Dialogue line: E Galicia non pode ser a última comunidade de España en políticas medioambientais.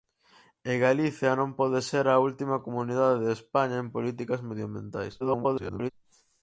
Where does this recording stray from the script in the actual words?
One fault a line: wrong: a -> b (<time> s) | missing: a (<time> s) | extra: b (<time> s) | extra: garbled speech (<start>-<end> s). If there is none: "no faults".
extra: garbled speech (5.2-5.9 s)